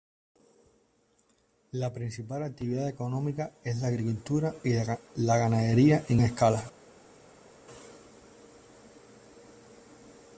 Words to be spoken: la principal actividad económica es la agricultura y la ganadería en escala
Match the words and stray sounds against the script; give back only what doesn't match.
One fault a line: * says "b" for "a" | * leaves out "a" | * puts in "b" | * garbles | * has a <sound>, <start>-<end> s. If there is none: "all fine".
all fine